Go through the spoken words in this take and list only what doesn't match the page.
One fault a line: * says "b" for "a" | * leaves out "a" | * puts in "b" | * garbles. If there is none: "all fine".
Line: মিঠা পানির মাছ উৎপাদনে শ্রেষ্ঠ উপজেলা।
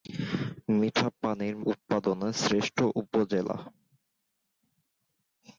* leaves out "মাছ"